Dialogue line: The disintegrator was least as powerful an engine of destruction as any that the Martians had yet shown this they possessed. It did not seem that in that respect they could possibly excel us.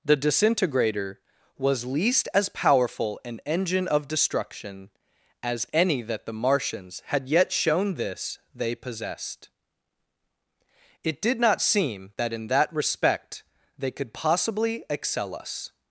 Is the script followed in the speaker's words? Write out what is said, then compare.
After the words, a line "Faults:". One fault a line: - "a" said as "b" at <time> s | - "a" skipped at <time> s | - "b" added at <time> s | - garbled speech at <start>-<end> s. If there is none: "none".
The disintegrator was least as powerful an engine of destruction as any that the Martians had yet shown this they possessed. It did not seem that in that respect they could possibly excel us.
Faults:
none